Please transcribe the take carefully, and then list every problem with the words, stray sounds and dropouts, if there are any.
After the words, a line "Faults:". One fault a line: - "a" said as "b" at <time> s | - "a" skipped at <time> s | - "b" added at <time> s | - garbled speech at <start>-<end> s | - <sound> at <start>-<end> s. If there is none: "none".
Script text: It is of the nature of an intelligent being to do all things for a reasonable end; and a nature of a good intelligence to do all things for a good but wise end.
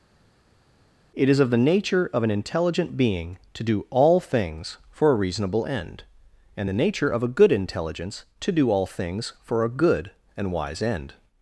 It is of the nature of an intelligent being to do all things for a reasonable end; and the nature of a good intelligence to do all things for a good and wise end.
Faults:
- "a" said as "the" at 6.7 s
- "but" said as "and" at 10.4 s